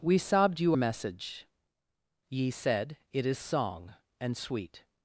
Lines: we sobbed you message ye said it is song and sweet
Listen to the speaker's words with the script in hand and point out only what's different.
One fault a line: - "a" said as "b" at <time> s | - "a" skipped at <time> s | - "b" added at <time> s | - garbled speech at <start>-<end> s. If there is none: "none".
none